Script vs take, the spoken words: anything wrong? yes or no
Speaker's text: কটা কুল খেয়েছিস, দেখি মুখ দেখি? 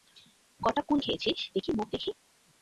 no